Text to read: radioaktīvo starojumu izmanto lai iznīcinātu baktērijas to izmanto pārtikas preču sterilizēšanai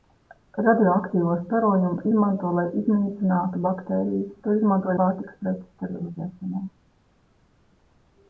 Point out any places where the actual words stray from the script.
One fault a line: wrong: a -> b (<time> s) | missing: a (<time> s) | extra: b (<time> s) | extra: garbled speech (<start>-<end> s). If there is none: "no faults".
no faults